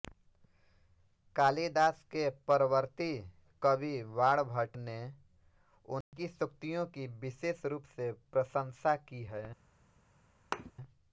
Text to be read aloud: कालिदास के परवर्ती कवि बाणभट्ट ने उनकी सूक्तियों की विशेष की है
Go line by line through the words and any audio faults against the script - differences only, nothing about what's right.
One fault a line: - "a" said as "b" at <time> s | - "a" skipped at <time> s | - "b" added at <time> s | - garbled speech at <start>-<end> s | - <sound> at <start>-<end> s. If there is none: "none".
- dropout at 6.0-6.1 s
- "रूप से प्रशंसा" added at 7.6 s
- thud at 10.5-10.7 s